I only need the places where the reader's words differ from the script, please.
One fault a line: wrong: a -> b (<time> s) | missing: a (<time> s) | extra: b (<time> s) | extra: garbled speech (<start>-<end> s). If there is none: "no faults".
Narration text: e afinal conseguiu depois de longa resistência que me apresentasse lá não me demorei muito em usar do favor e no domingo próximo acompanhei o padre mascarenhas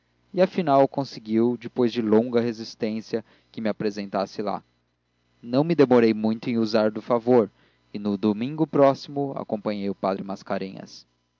no faults